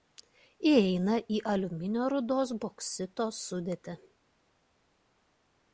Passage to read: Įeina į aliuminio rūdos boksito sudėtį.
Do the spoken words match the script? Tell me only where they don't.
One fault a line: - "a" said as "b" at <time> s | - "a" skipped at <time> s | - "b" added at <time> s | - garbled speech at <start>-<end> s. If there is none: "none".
none